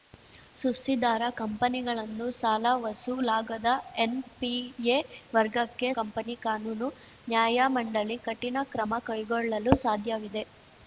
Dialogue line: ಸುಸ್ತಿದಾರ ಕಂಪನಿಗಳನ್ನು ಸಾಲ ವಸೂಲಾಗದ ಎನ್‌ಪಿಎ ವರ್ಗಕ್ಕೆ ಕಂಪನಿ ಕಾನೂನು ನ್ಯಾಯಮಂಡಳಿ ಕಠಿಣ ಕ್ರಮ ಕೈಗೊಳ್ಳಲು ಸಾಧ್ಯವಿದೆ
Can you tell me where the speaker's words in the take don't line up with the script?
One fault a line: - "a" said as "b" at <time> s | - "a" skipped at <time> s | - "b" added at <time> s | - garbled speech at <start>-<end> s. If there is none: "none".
none